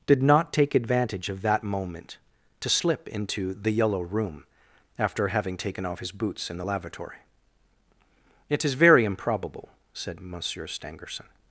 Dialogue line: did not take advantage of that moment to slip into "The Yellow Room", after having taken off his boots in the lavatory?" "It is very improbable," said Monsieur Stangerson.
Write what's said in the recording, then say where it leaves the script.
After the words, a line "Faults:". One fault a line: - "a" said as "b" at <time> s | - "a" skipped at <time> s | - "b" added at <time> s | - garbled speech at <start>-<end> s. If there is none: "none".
did not take advantage of that moment to slip into "The Yellow Room", after having taken off his boots in the lavatory?" "It is very improbable," said Monsieur Stangerson.
Faults:
none